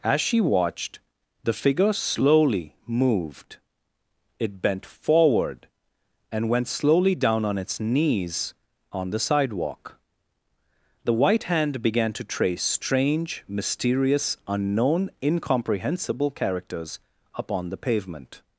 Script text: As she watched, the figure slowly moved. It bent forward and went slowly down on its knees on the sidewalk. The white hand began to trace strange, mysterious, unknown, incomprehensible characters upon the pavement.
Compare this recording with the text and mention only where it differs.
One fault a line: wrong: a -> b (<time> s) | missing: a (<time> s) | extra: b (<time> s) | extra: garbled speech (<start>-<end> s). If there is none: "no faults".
no faults